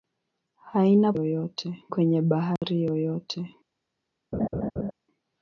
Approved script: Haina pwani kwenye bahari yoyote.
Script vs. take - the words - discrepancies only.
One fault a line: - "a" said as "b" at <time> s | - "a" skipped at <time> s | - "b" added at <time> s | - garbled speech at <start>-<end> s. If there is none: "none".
- "pwani" said as "yoyote" at 1.1 s